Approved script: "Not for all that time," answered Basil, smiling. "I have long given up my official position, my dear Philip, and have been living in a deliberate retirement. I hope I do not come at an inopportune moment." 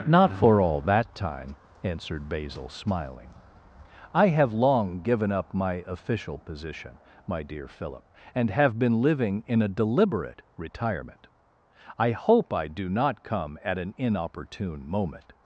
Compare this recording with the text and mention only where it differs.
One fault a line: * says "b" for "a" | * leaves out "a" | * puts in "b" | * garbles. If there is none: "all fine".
all fine